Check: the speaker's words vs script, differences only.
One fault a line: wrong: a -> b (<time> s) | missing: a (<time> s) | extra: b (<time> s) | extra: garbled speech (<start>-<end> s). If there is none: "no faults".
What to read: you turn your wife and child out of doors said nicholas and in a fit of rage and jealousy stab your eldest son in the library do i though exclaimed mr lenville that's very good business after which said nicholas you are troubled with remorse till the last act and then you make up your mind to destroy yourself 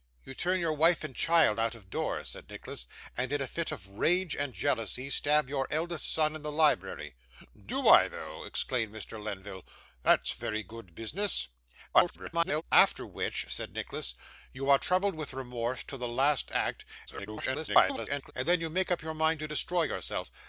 extra: garbled speech (11.9-12.6 s)
extra: garbled speech (17.1-18.3 s)